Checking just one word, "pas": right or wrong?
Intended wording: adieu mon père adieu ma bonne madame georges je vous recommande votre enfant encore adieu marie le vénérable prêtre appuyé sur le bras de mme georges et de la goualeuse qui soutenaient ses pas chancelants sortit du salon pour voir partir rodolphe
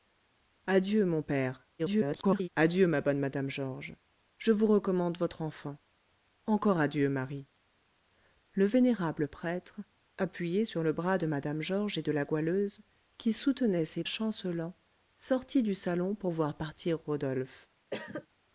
wrong